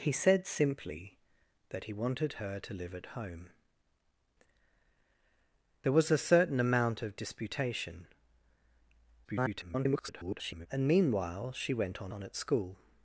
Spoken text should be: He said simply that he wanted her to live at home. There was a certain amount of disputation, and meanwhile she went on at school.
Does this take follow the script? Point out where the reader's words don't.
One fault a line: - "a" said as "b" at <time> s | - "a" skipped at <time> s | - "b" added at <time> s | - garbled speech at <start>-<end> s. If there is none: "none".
- garbled speech at 9.2-10.7 s
- "on" added at 12.1 s